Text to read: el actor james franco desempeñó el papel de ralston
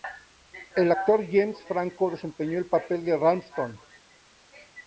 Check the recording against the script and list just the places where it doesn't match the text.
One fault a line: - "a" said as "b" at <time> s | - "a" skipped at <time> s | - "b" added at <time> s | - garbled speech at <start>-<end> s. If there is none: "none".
none